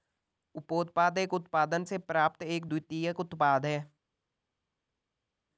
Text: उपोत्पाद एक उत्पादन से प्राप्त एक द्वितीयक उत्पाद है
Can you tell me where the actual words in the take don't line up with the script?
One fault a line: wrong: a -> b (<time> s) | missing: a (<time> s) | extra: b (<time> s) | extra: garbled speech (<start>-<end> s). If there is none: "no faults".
no faults